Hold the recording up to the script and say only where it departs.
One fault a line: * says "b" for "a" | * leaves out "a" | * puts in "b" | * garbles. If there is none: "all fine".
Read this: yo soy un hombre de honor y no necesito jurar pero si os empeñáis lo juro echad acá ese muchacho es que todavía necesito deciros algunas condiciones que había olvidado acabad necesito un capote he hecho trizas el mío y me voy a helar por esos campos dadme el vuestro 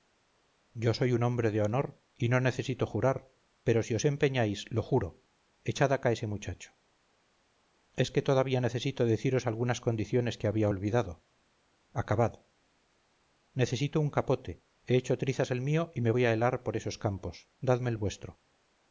all fine